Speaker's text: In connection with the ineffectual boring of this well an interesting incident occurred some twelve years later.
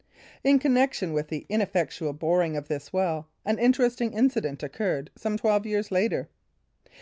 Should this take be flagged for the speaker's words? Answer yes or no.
no